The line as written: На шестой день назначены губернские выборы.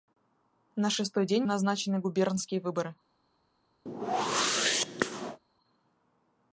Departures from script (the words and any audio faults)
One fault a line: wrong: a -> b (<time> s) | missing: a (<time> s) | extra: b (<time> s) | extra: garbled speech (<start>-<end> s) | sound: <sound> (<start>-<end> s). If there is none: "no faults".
sound: whoosh (3.9-5.4 s)